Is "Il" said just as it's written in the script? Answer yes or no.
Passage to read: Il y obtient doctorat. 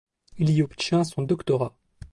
yes